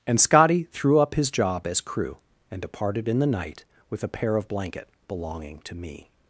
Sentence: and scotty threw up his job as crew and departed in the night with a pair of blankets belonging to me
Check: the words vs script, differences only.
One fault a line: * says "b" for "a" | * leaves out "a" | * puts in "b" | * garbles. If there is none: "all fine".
* says "blanket" for "blankets"